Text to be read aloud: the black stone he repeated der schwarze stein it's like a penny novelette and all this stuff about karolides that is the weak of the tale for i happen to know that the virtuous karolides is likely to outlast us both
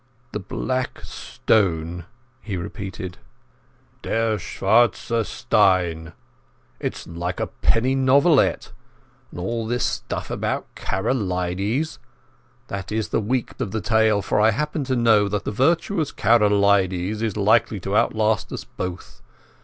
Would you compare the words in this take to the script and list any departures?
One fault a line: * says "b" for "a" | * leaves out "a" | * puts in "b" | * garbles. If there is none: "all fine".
all fine